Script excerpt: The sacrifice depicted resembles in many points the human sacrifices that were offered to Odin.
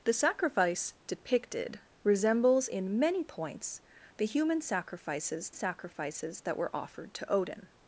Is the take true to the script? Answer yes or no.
no